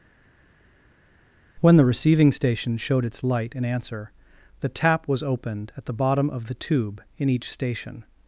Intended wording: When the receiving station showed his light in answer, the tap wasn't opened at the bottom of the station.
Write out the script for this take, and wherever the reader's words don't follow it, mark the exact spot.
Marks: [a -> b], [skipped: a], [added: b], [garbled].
When the receiving station showed [his -> its] light in answer, the tap [wasn't -> was] opened at the bottom of the [added: tube in each] station.